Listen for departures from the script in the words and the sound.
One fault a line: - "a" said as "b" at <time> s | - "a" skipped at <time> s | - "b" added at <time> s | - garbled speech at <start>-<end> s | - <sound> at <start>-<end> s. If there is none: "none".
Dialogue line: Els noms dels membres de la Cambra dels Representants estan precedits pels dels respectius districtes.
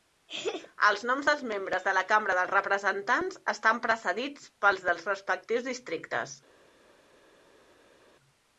none